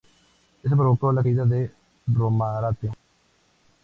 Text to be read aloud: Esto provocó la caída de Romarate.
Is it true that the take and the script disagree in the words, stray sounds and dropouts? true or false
false